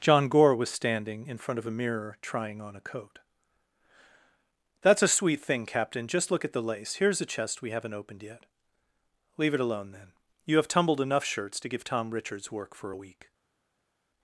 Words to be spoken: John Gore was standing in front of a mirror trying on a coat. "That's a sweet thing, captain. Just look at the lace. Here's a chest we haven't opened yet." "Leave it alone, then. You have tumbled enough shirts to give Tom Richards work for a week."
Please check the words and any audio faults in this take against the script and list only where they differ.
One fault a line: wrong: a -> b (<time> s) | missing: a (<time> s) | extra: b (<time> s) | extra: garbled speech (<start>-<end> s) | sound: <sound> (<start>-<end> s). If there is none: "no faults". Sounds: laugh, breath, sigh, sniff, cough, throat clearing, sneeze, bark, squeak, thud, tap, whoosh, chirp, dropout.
no faults